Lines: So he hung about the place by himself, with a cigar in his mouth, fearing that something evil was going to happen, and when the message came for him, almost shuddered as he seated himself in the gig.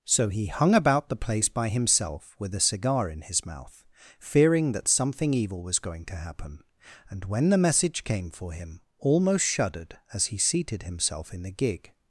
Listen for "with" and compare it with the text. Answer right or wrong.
right